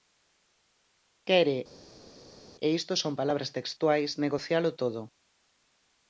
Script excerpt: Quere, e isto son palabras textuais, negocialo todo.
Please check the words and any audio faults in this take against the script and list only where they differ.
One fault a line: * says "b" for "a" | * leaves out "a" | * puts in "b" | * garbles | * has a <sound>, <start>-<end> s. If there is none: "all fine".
all fine